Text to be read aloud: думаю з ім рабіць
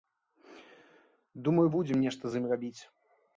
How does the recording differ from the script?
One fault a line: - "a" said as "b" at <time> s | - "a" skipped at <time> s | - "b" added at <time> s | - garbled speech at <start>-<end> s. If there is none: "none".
- "будзем нешта" added at 1.7 s